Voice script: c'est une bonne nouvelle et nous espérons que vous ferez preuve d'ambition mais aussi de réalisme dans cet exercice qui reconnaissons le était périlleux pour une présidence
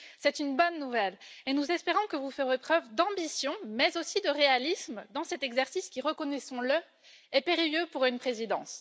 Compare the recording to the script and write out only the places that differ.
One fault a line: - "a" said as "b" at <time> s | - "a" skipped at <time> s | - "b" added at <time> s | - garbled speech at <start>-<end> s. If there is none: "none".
- "était" said as "est" at 7.3 s